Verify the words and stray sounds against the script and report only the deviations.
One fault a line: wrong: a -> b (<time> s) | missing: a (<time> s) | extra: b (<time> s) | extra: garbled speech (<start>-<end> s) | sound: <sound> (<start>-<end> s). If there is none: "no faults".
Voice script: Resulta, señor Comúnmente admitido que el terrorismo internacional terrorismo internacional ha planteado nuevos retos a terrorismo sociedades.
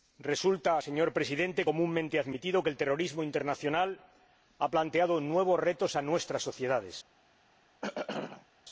extra: Presidente (1.2 s)
missing: terrorismo internacional (4.0 s)
wrong: terrorismo -> nuestras (6.0 s)
sound: throat clearing (7.8-8.5 s)